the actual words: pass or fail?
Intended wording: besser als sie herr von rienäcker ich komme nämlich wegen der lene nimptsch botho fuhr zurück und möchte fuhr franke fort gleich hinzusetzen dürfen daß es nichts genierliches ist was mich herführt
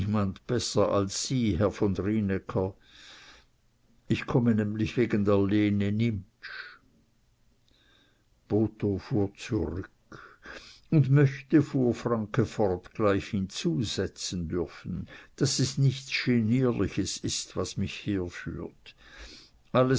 pass